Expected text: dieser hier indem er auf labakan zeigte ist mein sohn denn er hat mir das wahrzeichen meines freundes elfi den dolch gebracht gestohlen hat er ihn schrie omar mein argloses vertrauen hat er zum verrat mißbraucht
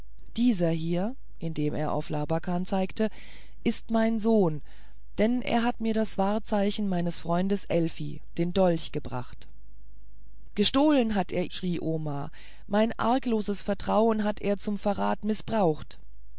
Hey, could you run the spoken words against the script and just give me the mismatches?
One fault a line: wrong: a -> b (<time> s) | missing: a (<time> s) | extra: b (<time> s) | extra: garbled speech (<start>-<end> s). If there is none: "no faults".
missing: ihn (11.4 s)